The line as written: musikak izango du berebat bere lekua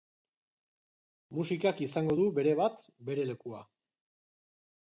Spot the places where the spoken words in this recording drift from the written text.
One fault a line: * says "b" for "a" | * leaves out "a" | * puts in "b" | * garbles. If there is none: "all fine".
all fine